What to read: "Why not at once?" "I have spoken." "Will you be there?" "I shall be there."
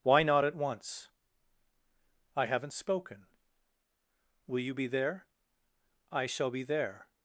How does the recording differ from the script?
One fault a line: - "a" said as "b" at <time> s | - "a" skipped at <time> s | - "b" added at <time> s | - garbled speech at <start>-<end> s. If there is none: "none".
- "have" said as "haven't" at 2.5 s